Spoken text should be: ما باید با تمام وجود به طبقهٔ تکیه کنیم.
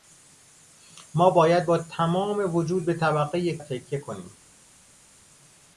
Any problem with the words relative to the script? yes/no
no